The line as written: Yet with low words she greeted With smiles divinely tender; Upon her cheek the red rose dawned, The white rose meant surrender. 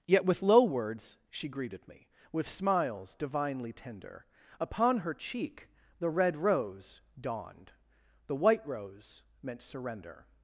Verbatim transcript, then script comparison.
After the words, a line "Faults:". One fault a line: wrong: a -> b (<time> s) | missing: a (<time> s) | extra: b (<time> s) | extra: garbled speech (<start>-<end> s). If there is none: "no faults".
Yet with low words she greeted me, With smiles divinely tender; Upon her cheek the red rose dawned, The white rose meant surrender.
Faults:
extra: me (1.9 s)